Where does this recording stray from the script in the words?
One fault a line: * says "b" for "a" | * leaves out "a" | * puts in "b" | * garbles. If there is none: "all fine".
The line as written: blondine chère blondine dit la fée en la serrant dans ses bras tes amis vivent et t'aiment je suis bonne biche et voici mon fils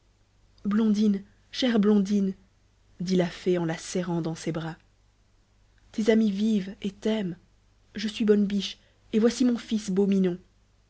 all fine